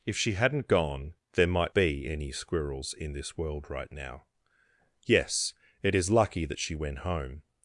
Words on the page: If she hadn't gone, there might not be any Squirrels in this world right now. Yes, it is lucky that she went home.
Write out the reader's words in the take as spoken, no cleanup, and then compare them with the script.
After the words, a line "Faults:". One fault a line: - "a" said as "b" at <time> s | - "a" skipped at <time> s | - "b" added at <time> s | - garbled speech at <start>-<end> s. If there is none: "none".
If she hadn't gone, there might be any Squirrels in this world right now. Yes, it is lucky that she went home.
Faults:
- "not" skipped at 1.8 s